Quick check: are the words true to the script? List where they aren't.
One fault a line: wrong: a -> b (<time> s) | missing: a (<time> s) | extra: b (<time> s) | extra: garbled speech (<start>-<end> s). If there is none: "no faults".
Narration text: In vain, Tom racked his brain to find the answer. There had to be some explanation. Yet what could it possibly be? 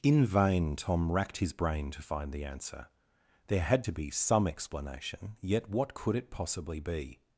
no faults